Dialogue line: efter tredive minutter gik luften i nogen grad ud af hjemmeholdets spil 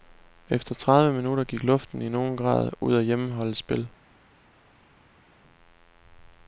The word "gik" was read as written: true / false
true